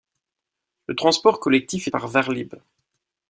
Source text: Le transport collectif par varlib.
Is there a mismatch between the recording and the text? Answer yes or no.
no